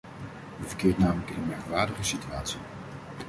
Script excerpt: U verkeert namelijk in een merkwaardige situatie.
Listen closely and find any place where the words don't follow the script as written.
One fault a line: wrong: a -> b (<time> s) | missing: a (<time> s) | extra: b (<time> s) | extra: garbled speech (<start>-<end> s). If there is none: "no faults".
no faults